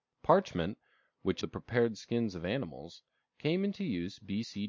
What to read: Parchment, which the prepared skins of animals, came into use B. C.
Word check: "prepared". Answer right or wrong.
right